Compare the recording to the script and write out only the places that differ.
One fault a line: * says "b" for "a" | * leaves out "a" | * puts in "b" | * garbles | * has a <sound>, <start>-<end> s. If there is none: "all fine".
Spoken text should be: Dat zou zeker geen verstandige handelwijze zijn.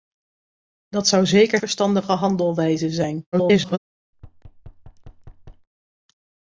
* leaves out "geen"
* garbles
* has a thud, 4.1-5.7 s